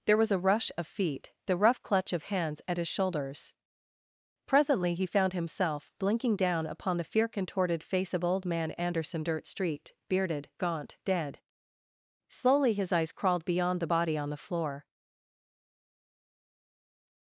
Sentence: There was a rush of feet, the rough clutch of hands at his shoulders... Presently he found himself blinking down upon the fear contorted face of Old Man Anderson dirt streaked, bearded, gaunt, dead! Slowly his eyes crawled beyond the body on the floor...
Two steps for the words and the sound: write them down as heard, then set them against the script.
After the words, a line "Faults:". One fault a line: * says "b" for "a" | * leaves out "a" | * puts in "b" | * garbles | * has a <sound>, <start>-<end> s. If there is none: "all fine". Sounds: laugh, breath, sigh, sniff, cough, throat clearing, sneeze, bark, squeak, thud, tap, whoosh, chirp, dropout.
There was a rush of feet, the rough clutch of hands at his shoulders... Presently he found himself blinking down upon the fear contorted face of Old Man Anderson dirt street, bearded, gaunt, dead! Slowly his eyes crawled beyond the body on the floor...
Faults:
* says "street" for "streaked"